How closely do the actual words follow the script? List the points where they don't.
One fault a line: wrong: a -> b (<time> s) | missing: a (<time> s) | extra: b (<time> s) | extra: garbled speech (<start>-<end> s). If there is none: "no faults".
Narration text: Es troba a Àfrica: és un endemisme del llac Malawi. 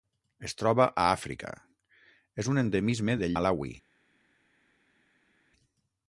missing: llac (3.4 s)